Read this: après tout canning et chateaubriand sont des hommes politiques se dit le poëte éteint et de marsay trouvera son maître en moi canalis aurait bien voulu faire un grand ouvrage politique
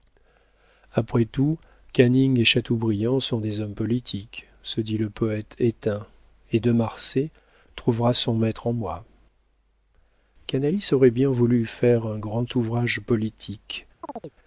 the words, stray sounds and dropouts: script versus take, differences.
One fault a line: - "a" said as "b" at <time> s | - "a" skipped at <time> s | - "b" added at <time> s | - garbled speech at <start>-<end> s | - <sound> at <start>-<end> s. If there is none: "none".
- chirp at 14.0-14.4 s